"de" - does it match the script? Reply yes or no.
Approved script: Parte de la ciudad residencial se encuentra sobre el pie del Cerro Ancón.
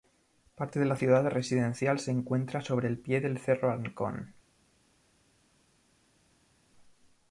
yes